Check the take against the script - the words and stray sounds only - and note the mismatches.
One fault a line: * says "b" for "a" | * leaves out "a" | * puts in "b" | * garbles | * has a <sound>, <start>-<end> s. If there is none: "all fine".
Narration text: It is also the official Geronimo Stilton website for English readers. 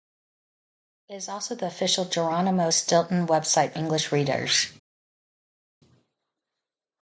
* leaves out "for"